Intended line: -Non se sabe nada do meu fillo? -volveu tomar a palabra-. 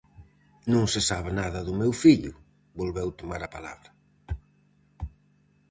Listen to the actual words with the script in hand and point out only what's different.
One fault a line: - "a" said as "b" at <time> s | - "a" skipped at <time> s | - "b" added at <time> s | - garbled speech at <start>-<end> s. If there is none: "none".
none